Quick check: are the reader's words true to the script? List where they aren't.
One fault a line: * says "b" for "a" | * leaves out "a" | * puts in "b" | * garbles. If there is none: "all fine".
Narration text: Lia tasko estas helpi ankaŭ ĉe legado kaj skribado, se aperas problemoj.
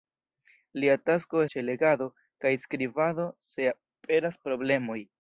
* leaves out "estas helpi ankaŭ"